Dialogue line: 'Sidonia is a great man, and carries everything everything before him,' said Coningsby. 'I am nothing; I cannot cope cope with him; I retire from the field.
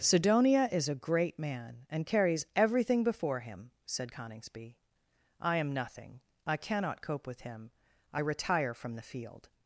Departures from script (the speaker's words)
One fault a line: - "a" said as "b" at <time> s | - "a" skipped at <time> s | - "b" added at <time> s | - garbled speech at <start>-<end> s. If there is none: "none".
- "everything" skipped at 3.0 s
- "cope" skipped at 7.3 s